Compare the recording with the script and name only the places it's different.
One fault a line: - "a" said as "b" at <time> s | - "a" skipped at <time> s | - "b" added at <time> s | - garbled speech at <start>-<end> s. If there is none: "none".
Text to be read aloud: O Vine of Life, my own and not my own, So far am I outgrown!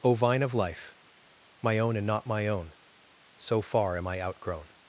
none